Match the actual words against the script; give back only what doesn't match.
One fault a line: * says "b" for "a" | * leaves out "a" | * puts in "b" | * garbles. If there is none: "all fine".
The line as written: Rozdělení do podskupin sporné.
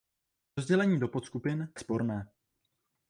all fine